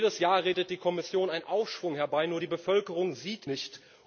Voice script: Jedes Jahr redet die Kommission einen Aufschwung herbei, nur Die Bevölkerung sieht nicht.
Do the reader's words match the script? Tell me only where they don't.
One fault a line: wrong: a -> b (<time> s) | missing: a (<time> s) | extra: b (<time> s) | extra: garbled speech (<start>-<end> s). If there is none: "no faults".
no faults